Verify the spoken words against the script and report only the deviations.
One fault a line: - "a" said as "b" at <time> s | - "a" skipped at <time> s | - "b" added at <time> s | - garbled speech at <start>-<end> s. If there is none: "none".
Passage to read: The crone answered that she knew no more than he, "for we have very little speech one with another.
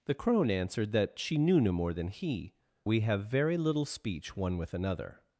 - "for" skipped at 2.5 s